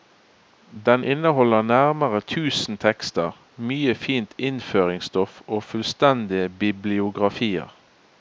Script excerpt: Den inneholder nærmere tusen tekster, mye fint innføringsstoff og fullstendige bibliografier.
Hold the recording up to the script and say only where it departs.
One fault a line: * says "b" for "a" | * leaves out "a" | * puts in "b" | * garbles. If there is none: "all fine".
all fine